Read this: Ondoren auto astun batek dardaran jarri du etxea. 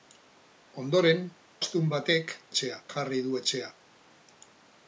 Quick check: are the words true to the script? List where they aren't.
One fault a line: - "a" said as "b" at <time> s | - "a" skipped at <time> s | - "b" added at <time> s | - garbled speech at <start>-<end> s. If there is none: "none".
- "auto" skipped at 1.2 s
- "dardaran" said as "etxea" at 2.5 s